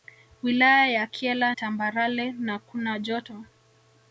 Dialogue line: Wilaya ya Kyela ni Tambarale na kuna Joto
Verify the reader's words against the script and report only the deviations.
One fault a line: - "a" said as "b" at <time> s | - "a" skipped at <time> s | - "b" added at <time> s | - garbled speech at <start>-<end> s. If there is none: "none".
- "ni" skipped at 1.5 s